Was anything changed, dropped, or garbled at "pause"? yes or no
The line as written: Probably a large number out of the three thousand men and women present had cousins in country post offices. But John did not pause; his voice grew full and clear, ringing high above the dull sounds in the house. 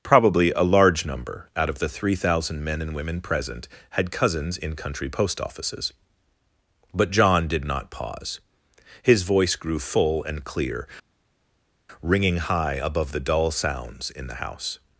no